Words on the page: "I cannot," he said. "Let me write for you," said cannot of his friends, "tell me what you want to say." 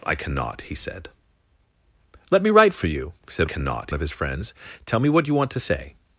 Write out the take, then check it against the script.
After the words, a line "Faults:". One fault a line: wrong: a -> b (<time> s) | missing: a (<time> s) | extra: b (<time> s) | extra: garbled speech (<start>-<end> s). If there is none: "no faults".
"I cannot," he said. "Let me write for you," said cannot of his friends, "tell me what you want to say."
Faults:
no faults